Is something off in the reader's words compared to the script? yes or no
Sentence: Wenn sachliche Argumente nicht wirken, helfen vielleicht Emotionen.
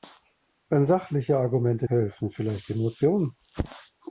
yes